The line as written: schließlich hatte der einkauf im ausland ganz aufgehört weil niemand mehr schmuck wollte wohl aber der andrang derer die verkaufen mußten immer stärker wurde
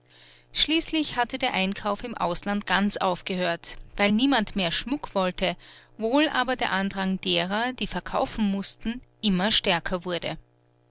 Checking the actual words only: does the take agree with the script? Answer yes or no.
yes